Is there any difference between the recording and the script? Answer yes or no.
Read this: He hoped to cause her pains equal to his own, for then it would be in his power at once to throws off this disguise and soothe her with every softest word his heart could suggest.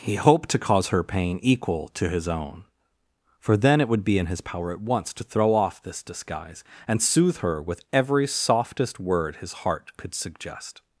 yes